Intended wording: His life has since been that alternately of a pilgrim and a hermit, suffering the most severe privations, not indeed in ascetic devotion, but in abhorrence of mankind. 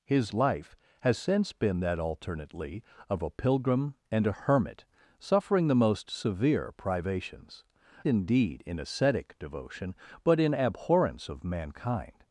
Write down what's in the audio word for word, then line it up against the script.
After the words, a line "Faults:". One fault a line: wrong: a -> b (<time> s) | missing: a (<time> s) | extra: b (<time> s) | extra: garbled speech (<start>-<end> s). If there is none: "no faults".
His life has since been that alternately of a pilgrim and a hermit, suffering the most severe privations, indeed in ascetic devotion, but in abhorrence of mankind.
Faults:
missing: not (7.6 s)